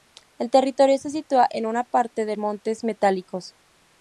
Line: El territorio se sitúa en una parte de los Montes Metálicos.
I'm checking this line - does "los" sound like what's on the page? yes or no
no